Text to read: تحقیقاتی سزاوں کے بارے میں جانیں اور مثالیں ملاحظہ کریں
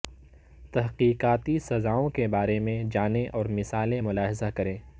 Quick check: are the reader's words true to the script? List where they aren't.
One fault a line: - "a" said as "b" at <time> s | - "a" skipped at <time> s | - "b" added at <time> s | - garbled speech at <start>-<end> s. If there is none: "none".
none